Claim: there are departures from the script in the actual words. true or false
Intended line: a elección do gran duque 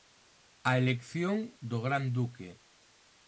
false